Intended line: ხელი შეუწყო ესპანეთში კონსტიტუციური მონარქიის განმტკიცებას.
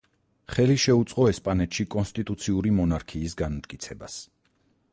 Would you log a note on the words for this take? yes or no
no